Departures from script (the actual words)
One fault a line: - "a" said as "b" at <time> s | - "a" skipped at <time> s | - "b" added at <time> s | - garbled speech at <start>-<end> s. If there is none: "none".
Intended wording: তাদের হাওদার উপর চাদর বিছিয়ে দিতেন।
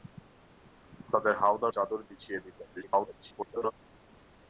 - "উপর" skipped at 1.7 s
- garbled speech at 2.8-3.7 s